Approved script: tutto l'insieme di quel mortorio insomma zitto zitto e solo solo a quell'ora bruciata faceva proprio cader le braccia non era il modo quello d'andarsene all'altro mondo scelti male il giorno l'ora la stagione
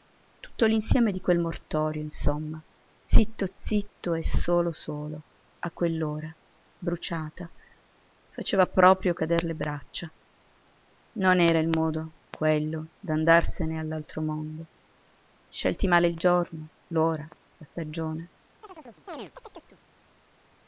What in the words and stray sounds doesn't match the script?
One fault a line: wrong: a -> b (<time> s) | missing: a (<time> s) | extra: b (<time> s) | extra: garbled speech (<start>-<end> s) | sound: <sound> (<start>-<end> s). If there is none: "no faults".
sound: chirp (18.6-19.8 s)